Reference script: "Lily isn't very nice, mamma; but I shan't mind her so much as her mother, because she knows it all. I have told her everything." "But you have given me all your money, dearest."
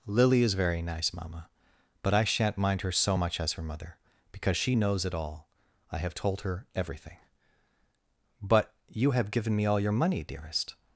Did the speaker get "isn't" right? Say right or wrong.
wrong